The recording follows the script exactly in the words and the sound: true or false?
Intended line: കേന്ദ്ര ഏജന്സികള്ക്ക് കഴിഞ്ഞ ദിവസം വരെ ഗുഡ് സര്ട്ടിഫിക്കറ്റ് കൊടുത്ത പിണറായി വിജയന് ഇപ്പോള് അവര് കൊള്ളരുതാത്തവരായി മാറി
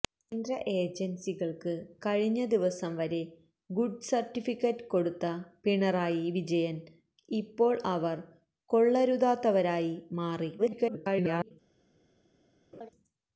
false